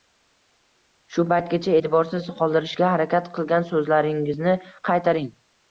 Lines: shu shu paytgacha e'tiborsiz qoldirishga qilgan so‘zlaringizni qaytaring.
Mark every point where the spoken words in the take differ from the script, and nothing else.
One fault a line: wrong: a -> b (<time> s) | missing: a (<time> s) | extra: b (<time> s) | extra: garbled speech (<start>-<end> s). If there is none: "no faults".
missing: shu (1.2 s)
extra: harakat (2.9 s)